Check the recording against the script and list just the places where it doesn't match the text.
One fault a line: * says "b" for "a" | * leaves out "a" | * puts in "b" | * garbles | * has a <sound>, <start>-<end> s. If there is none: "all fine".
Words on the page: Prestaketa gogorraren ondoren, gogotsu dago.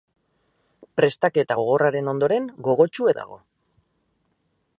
all fine